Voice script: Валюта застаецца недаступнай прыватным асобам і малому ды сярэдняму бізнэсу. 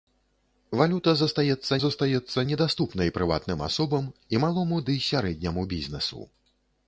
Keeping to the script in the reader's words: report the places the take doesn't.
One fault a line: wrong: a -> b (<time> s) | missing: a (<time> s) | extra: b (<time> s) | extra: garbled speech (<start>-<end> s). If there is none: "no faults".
extra: застаецца (1.8 s)